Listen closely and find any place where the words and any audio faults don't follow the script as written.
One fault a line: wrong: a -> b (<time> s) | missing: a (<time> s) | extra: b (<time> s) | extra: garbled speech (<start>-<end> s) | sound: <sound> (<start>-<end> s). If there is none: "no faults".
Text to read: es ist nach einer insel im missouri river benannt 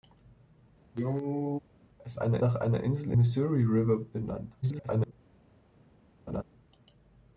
sound: cough (0.9-1.6 s)
wrong: ist -> einer (2.1 s)
missing: im (3.1 s)
extra: garbled speech (4.6-5.1 s)
sound: laugh (6.3-6.4 s)